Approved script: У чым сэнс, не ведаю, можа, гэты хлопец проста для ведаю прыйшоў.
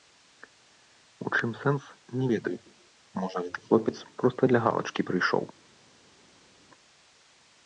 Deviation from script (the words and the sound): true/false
true